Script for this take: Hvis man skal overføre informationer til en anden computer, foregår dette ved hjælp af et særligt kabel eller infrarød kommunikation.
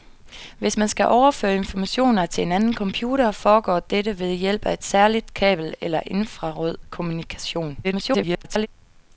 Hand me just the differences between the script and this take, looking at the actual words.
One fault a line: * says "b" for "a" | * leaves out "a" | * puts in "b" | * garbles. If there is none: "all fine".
* garbles